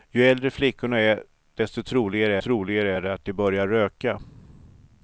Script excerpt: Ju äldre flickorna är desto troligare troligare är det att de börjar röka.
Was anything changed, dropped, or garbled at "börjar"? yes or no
no